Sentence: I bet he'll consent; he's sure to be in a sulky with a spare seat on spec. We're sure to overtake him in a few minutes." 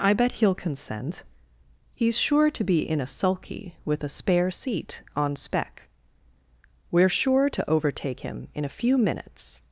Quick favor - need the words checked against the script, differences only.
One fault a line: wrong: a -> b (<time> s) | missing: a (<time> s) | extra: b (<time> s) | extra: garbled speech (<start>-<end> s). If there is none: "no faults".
no faults